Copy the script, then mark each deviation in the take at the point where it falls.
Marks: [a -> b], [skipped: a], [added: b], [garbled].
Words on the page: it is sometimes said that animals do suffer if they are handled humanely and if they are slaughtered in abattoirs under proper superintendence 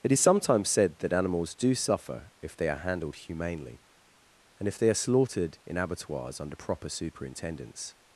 it is sometimes said that animals do suffer if they are handled humanely and if they are slaughtered in abattoirs under proper superintendence